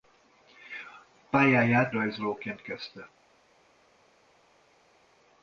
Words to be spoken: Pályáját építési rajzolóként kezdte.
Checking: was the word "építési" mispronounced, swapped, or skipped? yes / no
yes